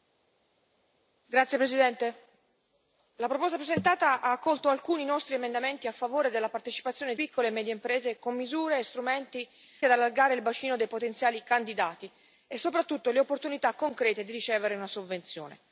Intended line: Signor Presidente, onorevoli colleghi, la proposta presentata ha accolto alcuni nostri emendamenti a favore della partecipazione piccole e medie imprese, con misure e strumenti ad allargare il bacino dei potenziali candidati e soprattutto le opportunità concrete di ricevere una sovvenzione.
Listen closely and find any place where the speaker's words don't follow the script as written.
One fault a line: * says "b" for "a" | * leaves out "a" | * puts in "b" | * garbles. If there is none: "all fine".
all fine